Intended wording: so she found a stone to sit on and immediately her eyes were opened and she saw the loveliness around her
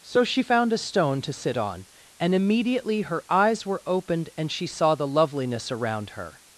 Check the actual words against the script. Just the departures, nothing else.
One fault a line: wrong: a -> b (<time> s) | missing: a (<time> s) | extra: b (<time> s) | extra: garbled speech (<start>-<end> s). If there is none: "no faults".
no faults